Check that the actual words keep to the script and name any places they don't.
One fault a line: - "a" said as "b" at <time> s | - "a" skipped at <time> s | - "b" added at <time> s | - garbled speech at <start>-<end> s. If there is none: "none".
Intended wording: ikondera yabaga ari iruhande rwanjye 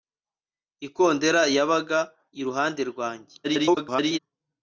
- "ari" skipped at 2.0 s
- garbled speech at 3.4-4.2 s